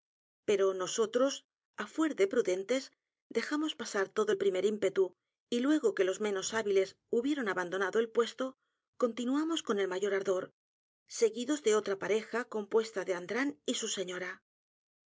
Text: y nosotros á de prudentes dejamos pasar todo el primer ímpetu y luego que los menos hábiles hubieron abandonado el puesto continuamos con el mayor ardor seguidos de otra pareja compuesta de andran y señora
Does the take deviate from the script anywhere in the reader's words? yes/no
yes